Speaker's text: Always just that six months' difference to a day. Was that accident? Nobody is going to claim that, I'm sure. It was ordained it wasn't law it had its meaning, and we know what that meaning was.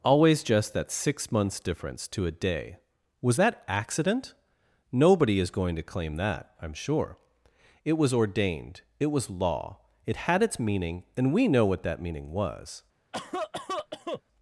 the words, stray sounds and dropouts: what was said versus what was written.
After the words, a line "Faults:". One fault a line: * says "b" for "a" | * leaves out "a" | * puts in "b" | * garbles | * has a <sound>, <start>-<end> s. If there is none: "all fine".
Always just that six months' difference to a day. Was that accident? Nobody is going to claim that, I'm sure. It was ordained it was law it had its meaning, and we know what that meaning was.
Faults:
* says "was" for "wasn't"
* has a cough, 13.1-14.2 s